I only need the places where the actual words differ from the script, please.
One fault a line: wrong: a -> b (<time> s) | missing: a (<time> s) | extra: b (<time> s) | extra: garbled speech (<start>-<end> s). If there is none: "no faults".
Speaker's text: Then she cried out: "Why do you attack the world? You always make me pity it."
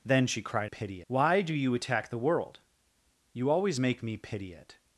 wrong: out -> pity (0.6 s)